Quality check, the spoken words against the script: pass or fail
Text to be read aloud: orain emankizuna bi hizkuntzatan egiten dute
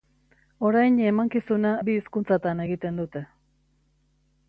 pass